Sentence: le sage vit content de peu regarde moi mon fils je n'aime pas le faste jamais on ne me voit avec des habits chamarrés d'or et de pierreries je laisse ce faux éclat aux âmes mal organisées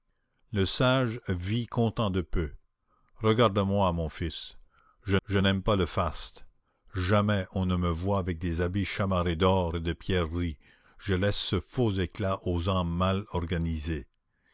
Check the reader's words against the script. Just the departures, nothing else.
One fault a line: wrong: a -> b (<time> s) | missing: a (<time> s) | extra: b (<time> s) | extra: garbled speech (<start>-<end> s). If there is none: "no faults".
extra: je (5.2 s)